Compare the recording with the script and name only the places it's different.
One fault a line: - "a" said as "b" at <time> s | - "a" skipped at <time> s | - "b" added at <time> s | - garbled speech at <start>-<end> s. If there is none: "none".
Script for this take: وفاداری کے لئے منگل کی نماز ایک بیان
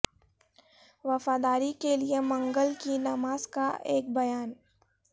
- "کا" added at 3.5 s